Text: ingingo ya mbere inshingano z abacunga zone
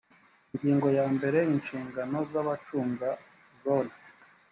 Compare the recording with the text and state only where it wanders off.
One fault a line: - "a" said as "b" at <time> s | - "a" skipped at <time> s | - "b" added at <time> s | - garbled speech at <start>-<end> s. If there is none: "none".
none